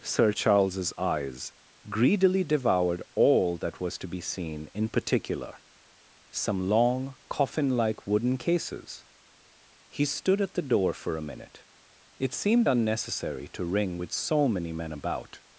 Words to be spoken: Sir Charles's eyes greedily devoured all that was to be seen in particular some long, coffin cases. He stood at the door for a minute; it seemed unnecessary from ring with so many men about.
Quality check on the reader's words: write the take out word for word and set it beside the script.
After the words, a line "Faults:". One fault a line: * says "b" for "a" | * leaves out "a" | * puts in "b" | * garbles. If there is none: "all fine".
Sir Charles's eyes greedily devoured all that was to be seen in particular some long, coffin like wooden cases. He stood at the door for a minute; it seemed unnecessary to ring with so many men about.
Faults:
* puts in "like wooden"
* says "to" for "from"